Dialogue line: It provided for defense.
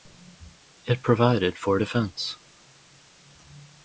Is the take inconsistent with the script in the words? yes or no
no